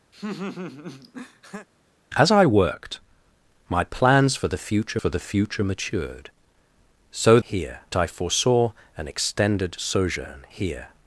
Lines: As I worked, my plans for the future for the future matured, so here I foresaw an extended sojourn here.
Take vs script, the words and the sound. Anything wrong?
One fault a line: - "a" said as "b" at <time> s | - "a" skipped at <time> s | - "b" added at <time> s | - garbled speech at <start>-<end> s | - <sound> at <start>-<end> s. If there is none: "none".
- laugh at 0.1-1.7 s